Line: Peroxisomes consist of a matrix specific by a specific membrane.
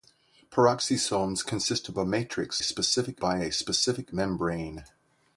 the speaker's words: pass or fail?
pass